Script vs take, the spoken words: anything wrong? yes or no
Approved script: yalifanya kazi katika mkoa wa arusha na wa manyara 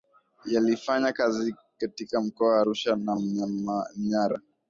no